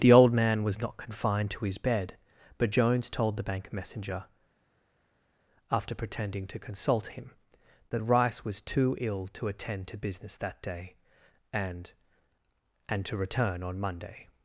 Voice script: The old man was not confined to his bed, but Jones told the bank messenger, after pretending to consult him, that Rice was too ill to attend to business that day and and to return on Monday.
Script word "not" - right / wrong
right